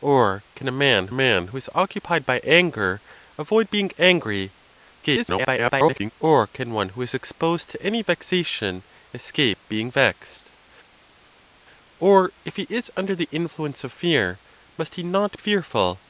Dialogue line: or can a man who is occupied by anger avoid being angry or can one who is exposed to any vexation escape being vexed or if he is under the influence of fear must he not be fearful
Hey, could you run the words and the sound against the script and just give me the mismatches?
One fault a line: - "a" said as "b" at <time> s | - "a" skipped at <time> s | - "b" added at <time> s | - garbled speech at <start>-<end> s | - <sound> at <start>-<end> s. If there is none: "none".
- "man" added at 1.1 s
- garbled speech at 5.0-6.1 s
- "be" skipped at 15.4 s